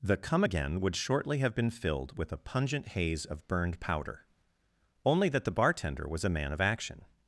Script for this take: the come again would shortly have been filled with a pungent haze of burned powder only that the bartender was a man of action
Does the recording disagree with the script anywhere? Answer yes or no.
no